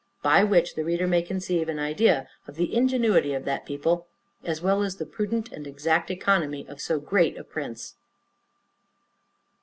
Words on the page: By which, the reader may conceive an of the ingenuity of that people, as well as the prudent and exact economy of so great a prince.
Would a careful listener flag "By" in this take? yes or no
no